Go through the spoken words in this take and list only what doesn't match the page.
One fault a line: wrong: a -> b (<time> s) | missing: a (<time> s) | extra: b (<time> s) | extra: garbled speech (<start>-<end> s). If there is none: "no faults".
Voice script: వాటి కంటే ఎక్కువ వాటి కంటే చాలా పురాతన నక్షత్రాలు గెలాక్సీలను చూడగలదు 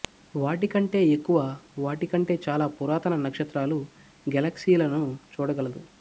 no faults